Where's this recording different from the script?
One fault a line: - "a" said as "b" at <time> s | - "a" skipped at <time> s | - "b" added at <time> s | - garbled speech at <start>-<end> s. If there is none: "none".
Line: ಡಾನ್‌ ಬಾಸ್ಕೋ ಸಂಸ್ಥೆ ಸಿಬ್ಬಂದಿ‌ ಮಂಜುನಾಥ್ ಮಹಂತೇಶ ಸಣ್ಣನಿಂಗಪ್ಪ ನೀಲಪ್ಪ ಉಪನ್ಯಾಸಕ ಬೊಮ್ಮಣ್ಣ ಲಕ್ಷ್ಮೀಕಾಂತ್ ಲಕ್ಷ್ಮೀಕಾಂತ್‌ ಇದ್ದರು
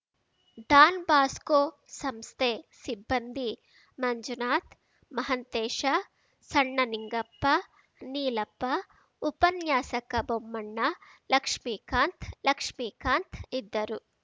none